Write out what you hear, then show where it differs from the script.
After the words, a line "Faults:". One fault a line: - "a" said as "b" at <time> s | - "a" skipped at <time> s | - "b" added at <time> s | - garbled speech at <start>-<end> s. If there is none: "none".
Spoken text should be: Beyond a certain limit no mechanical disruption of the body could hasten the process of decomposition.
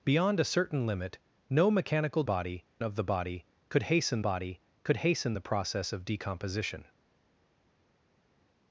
Beyond a certain limit no mechanical body of the body could hasten body could hasten the process of decomposition.
Faults:
- "disruption" said as "body" at 2.2 s
- "body could hasten" added at 4.2 s